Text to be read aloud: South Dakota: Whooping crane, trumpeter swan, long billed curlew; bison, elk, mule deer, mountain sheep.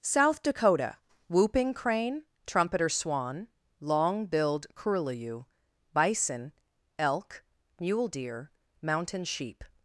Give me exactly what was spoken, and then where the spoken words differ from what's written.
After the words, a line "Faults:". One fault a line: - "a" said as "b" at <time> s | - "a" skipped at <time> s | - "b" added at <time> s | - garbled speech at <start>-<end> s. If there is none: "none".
South Dakota: Whooping crane, trumpeter swan, long billed curlew; bison, elk, mule deer, mountain sheep.
Faults:
none